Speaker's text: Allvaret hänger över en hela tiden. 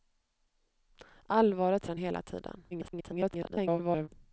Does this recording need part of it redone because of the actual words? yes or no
yes